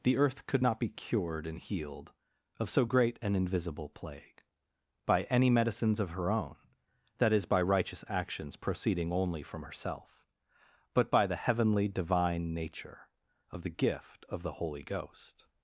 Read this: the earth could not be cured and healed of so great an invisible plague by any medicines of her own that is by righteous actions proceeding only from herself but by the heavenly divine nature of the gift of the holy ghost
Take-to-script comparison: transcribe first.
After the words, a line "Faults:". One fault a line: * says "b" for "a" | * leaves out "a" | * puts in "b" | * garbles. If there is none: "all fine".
the earth could not be cured and healed of so great an invisible plague by any medicines of her own that is by righteous actions proceeding only from herself but by the heavenly divine nature of the gift of the holy ghost
Faults:
all fine